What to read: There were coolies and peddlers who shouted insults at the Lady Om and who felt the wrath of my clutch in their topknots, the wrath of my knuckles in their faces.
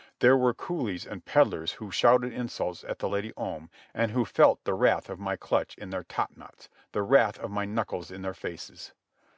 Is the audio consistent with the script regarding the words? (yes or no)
yes